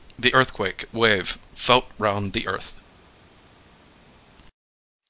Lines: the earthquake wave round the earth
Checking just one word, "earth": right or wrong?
right